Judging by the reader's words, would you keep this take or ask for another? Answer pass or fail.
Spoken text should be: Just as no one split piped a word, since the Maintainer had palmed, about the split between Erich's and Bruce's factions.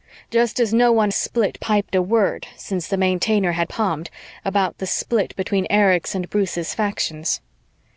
pass